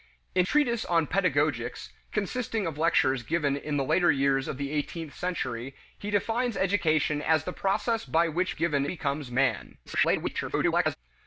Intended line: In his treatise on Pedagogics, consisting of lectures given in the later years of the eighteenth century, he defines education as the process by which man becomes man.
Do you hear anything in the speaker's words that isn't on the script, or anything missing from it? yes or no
yes